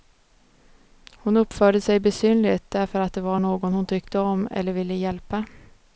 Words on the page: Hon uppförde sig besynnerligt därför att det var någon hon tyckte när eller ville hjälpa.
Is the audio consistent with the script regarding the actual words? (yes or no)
no